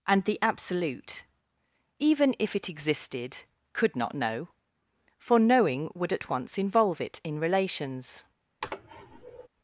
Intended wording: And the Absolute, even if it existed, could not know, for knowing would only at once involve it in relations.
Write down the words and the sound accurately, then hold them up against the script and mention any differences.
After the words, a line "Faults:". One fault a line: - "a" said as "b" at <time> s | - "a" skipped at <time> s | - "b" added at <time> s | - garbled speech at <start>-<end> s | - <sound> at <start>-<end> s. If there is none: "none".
And the Absolute, even if it existed, could not know, for knowing would at once involve it in relations.
Faults:
- "only" skipped at 6.1 s
- sneeze at 8.6-9.5 s